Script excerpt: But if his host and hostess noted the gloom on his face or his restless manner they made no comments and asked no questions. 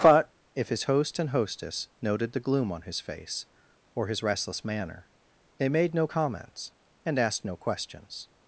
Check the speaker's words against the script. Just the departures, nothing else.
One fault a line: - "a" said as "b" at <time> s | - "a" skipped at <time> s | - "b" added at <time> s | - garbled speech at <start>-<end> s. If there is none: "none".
none